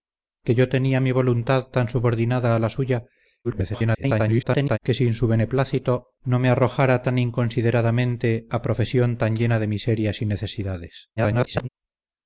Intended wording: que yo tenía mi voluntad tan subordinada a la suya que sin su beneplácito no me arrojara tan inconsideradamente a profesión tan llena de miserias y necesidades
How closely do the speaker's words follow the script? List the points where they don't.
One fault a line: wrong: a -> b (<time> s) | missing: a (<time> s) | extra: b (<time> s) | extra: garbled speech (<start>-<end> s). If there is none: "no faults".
extra: garbled speech (3.4-4.8 s)
extra: garbled speech (11.2-11.7 s)